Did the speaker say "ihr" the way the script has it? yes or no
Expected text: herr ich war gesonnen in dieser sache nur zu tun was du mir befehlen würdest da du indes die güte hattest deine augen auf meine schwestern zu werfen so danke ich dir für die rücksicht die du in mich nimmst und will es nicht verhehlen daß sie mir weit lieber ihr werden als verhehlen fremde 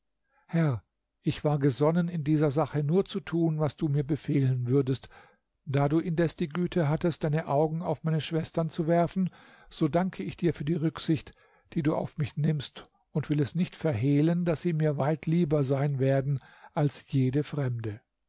no